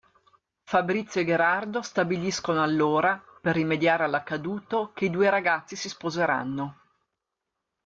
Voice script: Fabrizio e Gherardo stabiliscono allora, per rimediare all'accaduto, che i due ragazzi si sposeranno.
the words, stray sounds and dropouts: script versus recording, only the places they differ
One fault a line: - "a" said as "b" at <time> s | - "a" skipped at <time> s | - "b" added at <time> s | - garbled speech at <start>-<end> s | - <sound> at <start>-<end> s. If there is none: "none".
none